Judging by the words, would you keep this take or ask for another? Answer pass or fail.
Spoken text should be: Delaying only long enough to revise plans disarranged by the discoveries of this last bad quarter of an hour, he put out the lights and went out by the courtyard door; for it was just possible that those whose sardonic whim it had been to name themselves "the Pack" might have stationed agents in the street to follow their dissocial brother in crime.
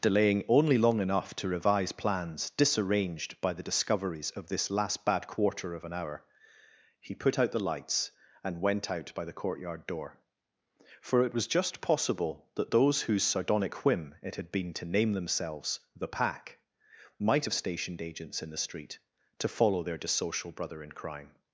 pass